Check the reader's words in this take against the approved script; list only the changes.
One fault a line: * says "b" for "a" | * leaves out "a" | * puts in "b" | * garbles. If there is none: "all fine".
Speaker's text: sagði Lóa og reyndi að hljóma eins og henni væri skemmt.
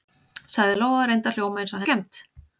* leaves out "henni væri"